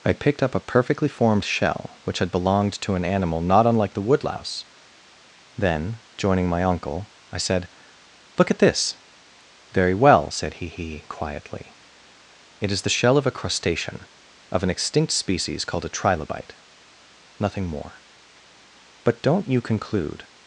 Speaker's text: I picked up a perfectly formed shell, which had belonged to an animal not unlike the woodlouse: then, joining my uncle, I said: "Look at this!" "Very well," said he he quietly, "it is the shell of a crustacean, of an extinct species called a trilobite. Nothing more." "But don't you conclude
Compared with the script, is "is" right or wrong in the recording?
right